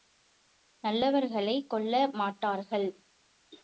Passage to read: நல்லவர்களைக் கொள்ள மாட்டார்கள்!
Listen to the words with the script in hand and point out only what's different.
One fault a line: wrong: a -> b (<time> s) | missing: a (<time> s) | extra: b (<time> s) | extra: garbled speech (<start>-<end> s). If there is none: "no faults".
no faults